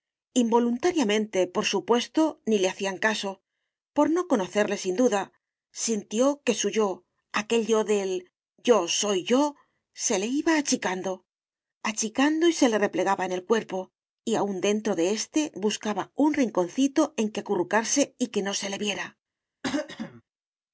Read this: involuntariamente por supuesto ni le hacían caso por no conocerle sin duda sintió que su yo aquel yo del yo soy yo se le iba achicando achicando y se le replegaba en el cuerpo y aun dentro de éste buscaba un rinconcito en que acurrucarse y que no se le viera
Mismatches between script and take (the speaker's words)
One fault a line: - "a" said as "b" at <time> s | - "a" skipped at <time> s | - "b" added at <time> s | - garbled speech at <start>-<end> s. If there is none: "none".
none